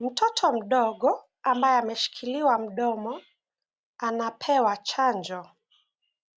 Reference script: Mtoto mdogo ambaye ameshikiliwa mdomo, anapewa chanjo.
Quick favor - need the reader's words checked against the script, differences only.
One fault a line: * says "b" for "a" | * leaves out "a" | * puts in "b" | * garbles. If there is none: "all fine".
all fine